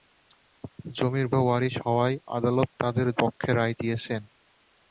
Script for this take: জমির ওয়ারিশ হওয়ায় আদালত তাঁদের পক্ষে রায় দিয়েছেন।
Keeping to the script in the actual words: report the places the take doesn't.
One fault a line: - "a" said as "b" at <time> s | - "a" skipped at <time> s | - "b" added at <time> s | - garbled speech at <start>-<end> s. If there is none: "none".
none